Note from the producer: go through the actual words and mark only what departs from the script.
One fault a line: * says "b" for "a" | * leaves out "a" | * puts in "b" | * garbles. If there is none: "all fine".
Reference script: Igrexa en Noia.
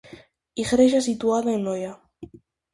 * puts in "situada"